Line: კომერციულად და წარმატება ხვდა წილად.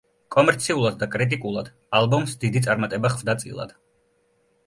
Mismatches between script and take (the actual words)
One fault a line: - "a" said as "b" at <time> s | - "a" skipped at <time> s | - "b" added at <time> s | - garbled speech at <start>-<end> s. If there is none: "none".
- "კრიტიკულად ალბომს დიდი" added at 1.1 s